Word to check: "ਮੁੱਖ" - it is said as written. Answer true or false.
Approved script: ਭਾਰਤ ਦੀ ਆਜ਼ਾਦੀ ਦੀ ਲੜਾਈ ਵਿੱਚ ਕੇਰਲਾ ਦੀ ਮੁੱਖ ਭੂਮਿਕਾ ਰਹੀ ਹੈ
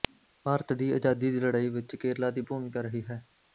false